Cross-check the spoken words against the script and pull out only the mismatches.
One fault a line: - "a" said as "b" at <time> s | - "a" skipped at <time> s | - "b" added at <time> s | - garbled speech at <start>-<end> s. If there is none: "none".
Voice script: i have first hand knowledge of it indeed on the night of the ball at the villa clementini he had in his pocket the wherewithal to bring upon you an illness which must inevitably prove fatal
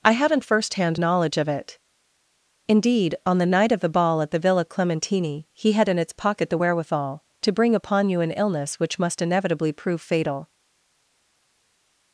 - "have" said as "haven't" at 0.1 s
- "his" said as "its" at 6.0 s